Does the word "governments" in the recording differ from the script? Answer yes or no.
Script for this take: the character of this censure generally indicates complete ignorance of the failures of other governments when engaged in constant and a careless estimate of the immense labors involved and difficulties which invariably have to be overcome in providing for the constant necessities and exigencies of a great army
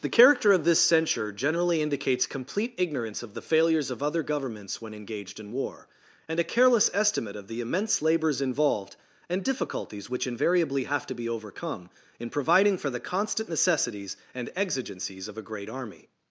no